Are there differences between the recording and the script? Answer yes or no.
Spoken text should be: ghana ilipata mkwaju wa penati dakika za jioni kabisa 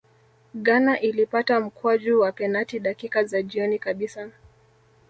no